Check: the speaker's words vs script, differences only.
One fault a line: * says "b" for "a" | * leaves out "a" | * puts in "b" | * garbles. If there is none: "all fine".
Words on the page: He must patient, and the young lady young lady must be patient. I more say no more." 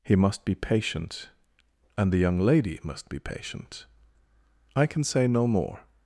* puts in "be"
* leaves out "young lady"
* says "can" for "more"